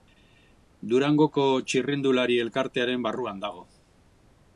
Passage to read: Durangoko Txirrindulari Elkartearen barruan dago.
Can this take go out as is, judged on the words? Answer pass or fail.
pass